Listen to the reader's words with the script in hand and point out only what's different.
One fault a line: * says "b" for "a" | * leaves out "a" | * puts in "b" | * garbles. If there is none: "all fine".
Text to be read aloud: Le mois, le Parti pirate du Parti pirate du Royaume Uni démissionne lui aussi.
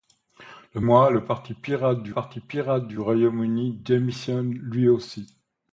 all fine